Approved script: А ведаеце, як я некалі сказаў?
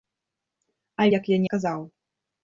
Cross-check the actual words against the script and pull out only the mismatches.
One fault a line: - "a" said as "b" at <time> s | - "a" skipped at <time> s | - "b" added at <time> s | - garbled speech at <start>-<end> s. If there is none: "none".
- "ведаеце" skipped at 1.1 s
- "некалі" skipped at 1.4 s